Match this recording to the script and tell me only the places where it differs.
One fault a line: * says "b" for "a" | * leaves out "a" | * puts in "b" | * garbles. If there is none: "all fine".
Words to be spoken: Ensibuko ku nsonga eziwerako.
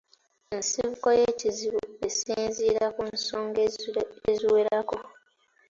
* puts in "y'ekizibu esinziira"